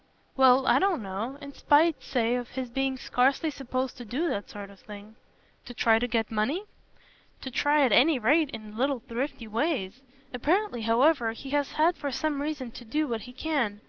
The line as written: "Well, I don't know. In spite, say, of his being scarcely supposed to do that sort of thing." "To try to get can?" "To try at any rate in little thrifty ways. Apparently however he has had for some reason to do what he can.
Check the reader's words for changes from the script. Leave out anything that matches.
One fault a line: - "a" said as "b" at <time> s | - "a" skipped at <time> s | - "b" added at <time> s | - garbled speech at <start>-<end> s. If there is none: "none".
- "can" said as "money" at 6.3 s